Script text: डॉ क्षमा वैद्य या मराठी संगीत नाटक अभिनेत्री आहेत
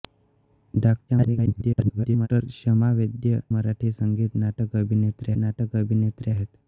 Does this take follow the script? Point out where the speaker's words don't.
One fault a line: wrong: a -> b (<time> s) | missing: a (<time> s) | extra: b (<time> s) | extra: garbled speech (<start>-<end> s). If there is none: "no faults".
extra: garbled speech (1.1-2.3 s)
missing: या (3.4 s)
extra: नाटक अभिनेत्री (5.4 s)